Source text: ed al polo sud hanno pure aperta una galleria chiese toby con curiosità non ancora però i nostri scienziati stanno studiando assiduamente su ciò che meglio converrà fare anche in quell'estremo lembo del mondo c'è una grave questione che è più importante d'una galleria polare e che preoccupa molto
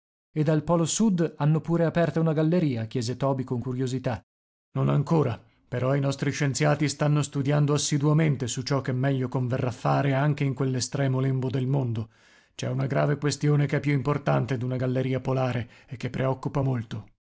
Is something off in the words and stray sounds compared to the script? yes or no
no